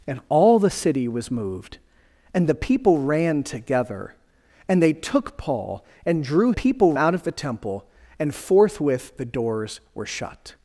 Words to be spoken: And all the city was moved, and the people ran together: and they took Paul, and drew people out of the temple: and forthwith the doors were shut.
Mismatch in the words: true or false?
false